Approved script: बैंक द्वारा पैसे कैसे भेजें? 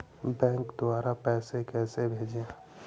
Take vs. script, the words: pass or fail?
pass